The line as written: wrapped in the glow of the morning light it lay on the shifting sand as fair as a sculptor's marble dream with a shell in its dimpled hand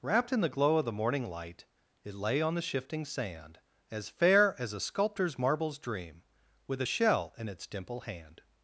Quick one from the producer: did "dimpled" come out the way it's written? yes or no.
no